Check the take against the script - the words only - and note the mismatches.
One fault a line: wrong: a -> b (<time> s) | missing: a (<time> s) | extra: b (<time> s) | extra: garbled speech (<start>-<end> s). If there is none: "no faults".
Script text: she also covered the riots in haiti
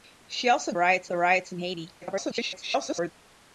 wrong: covered -> riots (0.7 s)
extra: garbled speech (2.0-3.1 s)